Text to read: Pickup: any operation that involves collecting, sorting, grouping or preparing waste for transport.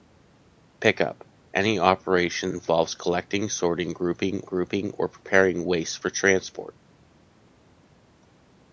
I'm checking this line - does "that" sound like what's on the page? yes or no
no